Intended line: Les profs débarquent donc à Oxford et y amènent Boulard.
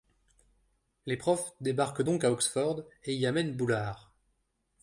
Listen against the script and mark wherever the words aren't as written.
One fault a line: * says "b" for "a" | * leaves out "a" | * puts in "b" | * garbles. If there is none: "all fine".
all fine